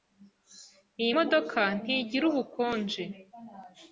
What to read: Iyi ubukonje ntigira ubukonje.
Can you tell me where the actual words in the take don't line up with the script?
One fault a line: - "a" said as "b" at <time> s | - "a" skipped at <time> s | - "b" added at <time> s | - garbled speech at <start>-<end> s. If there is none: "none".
- "ubukonje" said as "modoka" at 1.2 s